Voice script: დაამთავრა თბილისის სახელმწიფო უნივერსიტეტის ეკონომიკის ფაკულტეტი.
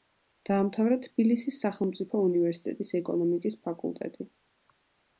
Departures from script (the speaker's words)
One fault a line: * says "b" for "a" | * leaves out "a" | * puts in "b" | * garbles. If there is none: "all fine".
all fine